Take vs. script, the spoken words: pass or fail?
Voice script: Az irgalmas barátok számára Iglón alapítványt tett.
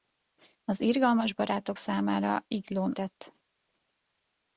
fail